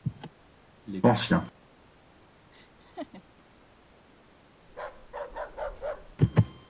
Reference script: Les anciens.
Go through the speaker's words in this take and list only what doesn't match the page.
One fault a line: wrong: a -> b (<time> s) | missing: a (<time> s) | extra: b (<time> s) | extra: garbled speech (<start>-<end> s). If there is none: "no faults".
no faults